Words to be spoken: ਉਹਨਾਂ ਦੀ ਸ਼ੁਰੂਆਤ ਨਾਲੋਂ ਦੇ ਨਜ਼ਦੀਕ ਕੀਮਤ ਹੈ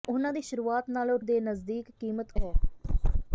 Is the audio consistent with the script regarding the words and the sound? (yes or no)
yes